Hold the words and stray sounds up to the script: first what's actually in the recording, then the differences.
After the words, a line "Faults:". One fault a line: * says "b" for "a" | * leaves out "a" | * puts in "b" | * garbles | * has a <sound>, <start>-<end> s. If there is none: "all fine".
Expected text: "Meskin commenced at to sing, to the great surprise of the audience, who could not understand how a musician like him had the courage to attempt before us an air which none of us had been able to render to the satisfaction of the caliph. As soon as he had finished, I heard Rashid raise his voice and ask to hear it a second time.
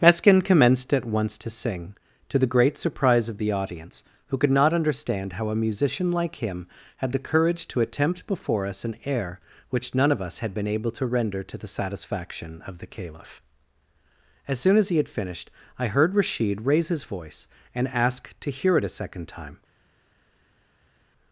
"Meskin commenced at once to sing, to the great surprise of the audience, who could not understand how a musician like him had the courage to attempt before us an air which none of us had been able to render to the satisfaction of the caliph. As soon as he had finished, I heard Rashid raise his voice and ask to hear it a second time.
Faults:
* puts in "once"